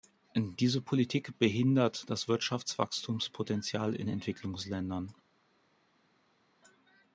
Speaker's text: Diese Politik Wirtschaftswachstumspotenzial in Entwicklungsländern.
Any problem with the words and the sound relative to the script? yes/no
yes